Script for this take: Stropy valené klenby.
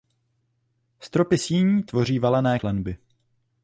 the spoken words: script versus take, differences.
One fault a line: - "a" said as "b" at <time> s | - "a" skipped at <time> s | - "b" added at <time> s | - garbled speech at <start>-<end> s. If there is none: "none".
- "síní tvoří" added at 1.4 s